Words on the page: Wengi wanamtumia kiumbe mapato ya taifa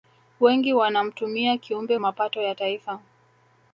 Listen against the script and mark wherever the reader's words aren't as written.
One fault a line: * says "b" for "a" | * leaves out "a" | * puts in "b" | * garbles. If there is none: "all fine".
all fine